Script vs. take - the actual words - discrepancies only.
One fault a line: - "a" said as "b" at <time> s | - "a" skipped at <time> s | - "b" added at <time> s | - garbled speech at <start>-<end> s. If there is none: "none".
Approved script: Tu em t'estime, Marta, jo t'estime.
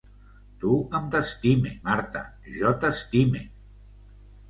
none